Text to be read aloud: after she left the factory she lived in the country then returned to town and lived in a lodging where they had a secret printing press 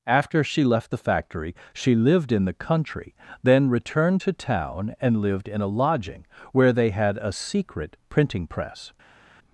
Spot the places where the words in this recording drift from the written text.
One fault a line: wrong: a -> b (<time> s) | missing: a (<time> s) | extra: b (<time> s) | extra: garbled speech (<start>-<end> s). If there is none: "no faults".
no faults